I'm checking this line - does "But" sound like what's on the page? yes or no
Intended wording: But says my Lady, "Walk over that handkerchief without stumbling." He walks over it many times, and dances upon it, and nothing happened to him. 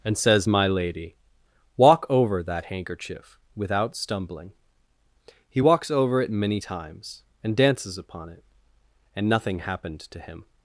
no